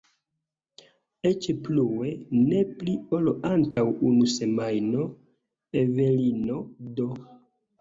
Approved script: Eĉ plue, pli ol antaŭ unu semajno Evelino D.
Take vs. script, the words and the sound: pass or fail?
fail